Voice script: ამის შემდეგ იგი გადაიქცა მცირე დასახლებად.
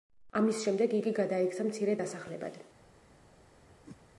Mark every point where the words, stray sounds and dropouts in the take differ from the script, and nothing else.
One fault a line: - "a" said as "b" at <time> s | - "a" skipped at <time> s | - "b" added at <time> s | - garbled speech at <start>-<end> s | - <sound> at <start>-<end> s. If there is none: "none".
- whoosh at 3.8-4.0 s